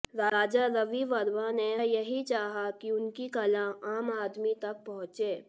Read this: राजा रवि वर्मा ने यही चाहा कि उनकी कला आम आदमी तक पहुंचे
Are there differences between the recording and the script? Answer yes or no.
no